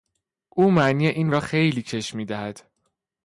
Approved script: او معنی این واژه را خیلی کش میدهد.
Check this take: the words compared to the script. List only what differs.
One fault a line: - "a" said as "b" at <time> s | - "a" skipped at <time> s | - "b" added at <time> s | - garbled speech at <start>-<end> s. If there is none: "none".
- "واژه" skipped at 1.3 s